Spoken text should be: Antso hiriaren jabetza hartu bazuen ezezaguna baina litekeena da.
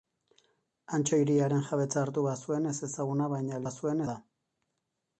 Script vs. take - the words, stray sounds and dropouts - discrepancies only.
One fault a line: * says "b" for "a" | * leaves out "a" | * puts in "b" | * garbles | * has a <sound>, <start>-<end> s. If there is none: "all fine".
* says "bazuen" for "litekeena"